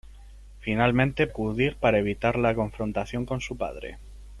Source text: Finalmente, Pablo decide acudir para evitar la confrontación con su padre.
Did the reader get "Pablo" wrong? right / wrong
wrong